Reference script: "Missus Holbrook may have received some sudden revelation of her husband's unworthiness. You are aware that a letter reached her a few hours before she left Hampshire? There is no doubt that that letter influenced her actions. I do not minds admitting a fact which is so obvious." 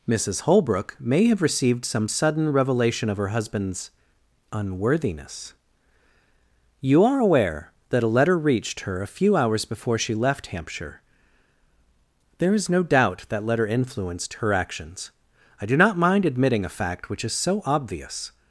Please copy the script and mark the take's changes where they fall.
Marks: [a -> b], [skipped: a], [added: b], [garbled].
"Missus Holbrook may have received some sudden revelation of her husband's unworthiness. You are aware that a letter reached her a few hours before she left Hampshire? There is no doubt that [skipped: that] letter influenced her actions. I do not [minds -> mind] admitting a fact which is so obvious."